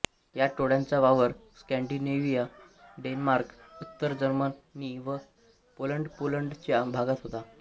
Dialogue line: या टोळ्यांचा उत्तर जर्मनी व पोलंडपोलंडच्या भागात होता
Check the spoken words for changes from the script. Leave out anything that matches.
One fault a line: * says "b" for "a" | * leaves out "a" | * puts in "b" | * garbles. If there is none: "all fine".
* puts in "वावर स्कॅंडिनेव्हिया डेन्मार्क"